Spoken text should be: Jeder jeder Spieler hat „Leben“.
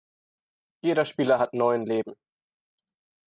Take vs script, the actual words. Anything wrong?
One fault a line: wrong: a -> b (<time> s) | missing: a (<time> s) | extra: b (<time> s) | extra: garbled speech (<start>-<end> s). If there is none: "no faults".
missing: jeder (1.1 s)
extra: neun (1.5 s)